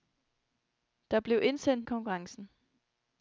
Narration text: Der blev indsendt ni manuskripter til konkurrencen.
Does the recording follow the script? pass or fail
fail